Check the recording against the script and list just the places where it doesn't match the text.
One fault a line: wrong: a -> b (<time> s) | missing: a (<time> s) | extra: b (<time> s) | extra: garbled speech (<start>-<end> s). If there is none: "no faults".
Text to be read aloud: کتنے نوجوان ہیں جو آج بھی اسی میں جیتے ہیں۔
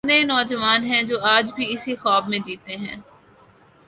extra: خواب (1.9 s)